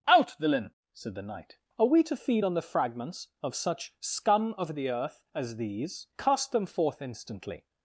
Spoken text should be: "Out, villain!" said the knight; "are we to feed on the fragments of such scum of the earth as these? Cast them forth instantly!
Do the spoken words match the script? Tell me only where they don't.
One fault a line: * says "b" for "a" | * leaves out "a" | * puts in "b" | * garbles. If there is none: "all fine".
all fine